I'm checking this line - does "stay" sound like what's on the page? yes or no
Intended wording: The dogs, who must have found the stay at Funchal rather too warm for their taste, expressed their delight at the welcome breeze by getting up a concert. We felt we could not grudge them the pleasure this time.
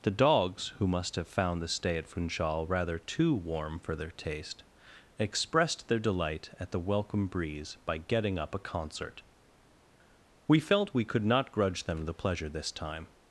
yes